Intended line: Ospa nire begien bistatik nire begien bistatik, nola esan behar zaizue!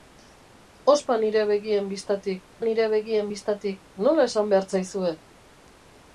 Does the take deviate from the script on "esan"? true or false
false